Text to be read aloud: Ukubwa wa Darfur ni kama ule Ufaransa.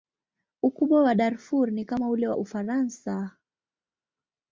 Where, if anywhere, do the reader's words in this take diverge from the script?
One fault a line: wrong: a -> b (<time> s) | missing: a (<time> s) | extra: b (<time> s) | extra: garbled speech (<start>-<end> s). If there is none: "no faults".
extra: wa (2.3 s)